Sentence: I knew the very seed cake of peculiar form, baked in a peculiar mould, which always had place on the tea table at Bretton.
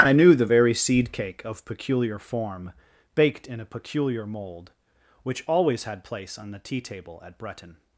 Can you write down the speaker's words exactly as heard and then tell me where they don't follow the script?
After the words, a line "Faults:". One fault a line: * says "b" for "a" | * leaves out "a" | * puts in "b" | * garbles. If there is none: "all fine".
I knew the very seed cake of peculiar form, baked in a peculiar mould, which always had place on the tea table at Bretton.
Faults:
all fine